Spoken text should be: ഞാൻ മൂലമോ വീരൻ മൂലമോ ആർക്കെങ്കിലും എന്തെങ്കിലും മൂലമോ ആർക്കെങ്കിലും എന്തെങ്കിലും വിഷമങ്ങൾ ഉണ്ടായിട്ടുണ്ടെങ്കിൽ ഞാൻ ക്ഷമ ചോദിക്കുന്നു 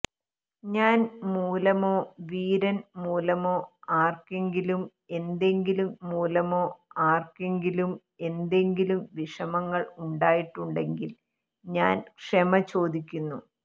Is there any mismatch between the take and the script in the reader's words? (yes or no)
no